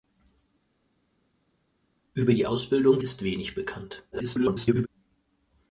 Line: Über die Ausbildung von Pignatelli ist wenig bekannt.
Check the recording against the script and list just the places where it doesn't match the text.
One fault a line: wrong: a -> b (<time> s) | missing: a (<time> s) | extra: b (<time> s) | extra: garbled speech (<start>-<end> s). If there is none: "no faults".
missing: von Pignatelli (3.0 s)
extra: garbled speech (4.1-4.9 s)